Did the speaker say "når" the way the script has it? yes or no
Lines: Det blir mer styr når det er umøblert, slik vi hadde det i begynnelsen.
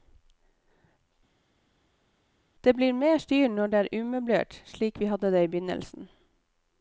yes